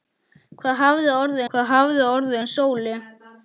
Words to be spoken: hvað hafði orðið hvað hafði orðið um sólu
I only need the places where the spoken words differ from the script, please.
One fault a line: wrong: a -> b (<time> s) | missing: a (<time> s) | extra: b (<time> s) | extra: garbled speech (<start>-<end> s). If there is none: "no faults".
no faults